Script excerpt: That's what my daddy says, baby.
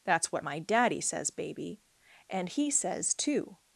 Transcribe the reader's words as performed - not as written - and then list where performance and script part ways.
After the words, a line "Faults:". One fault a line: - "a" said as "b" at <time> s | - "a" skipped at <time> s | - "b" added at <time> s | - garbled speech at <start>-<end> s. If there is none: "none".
That's what my daddy says, baby. And he says, too
Faults:
- "And he says too" added at 2.3 s